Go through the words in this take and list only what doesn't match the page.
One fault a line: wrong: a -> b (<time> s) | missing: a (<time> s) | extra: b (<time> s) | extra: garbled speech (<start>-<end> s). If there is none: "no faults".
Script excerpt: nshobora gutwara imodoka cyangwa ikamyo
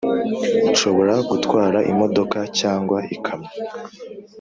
no faults